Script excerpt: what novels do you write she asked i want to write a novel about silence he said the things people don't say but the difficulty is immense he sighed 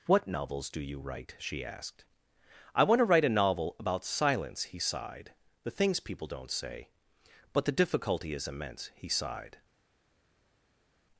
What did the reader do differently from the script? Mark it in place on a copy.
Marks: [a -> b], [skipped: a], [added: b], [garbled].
what novels do you write she asked i want to write a novel about silence he [said -> sighed] the things people don't say but the difficulty is immense he sighed